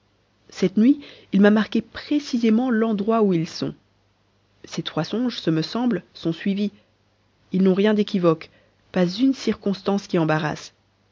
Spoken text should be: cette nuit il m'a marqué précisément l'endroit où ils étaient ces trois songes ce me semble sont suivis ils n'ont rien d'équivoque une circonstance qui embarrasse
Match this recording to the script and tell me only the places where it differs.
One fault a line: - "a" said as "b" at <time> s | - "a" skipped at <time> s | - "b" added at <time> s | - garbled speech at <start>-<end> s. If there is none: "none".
- "étaient" said as "sont" at 3.5 s
- "pas" added at 8.9 s